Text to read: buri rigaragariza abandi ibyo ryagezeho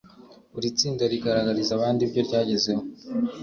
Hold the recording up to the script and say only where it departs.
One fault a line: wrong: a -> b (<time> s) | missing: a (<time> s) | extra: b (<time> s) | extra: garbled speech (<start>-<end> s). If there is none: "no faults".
extra: tsinda (0.8 s)